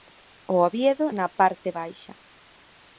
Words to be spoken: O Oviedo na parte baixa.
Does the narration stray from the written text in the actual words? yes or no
no